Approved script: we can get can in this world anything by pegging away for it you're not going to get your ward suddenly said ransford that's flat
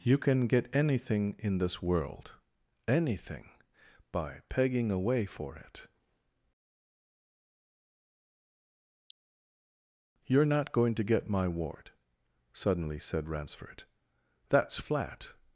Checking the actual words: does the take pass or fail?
fail